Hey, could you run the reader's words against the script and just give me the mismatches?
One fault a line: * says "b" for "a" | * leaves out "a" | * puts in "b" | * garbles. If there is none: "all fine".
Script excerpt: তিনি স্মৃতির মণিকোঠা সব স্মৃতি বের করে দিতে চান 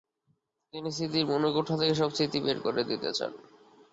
* puts in "থেকে"